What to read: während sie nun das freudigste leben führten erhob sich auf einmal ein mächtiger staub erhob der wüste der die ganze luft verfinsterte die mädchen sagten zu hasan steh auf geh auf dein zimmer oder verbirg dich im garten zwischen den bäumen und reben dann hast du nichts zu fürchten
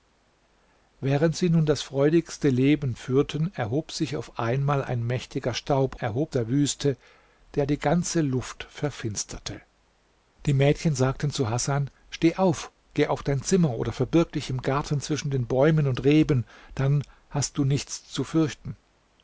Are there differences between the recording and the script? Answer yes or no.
no